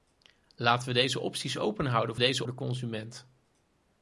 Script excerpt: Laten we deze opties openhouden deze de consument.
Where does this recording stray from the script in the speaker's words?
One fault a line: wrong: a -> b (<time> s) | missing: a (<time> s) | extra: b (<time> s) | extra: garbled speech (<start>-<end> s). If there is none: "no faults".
no faults